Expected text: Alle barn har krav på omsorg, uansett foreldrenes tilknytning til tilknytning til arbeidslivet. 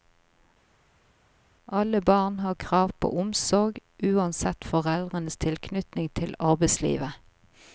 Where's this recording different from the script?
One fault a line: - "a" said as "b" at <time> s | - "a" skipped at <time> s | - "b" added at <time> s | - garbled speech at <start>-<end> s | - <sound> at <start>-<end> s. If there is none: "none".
- "tilknytning til" skipped at 6.3 s